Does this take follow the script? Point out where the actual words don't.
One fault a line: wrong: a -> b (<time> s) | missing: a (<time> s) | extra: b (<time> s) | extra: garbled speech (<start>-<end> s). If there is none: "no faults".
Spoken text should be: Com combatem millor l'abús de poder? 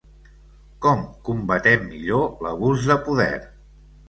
no faults